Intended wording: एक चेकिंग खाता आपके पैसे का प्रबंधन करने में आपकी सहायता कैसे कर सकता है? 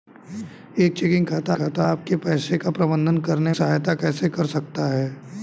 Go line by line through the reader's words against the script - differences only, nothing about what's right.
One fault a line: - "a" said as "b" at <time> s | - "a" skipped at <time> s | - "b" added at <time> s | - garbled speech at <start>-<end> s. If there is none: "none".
- "खाता" added at 1.6 s
- "में आपकी" skipped at 3.5 s